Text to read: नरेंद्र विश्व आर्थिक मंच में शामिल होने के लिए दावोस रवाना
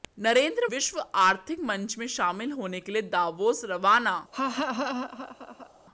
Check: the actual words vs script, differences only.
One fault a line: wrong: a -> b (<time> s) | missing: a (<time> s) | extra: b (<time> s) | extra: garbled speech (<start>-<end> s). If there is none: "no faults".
no faults